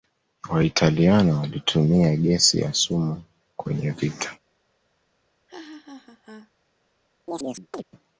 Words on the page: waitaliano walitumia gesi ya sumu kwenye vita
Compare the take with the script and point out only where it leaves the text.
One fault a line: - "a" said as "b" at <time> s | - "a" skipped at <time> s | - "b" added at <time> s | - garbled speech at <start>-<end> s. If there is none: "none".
none